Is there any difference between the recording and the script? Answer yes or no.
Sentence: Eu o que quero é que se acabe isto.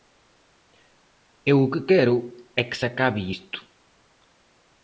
no